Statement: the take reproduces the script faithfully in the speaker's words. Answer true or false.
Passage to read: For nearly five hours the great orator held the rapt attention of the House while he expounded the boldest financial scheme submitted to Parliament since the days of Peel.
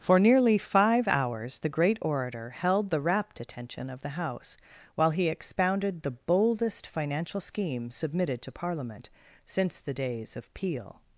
true